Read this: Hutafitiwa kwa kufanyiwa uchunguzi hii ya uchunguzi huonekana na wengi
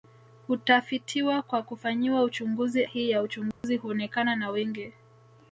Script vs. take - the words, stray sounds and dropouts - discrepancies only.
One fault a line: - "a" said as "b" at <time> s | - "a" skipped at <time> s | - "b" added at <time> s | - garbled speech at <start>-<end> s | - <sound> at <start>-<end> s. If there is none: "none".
- dropout at 3.5-3.6 s